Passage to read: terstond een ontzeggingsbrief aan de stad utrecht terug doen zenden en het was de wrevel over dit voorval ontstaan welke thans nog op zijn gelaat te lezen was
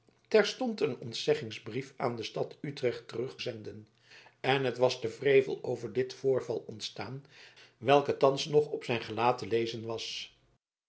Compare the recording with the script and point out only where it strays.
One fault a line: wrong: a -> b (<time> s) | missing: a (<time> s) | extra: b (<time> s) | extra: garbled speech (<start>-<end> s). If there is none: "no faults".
missing: doen (3.4 s)